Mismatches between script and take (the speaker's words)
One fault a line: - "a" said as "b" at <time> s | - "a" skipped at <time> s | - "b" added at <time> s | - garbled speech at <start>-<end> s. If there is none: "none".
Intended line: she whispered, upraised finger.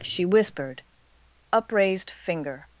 none